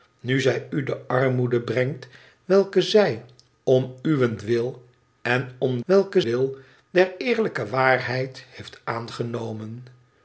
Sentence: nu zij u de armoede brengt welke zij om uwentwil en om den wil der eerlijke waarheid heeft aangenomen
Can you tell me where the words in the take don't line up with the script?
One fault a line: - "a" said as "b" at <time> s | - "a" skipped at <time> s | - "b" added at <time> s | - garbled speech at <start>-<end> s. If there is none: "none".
- "den" said as "welke" at 5.8 s